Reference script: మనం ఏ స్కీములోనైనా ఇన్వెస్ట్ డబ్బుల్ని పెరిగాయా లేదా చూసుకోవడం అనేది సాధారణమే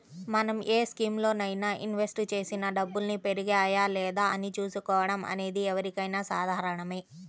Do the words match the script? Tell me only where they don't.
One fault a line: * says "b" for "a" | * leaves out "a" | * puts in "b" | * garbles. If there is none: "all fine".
* puts in "చేసిన"
* puts in "అని"
* puts in "ఎవరికైనా"